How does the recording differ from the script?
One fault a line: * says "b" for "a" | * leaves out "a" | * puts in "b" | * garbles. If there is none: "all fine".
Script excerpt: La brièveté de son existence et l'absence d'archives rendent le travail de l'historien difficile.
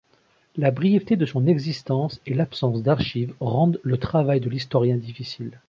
all fine